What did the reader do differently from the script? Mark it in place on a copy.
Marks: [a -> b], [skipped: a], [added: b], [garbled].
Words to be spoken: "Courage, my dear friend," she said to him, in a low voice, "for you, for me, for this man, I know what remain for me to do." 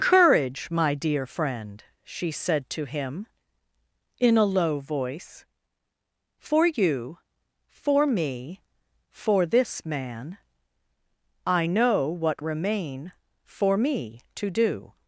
"Courage, my dear friend," she said to him, in a low voice, "for you, for me, for this man, I know what remain for me to do."